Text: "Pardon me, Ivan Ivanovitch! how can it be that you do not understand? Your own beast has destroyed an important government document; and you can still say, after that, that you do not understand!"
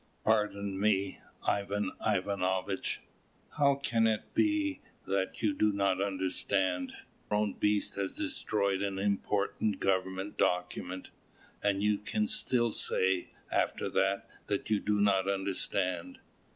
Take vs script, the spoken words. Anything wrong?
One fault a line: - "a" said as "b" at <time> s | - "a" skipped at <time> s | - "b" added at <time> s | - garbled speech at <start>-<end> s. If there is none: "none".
- "Your" skipped at 6.9 s